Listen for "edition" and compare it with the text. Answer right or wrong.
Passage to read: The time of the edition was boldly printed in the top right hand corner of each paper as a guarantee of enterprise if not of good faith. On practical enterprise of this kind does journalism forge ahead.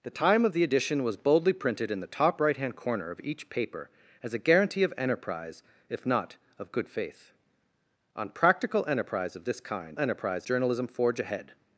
right